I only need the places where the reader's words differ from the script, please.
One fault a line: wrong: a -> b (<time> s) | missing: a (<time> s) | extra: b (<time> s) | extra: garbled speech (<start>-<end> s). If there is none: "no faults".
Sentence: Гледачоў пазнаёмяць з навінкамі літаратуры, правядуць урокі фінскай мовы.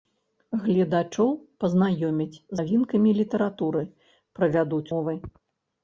missing: з (2.4 s)
missing: урокі фінскай (4.9 s)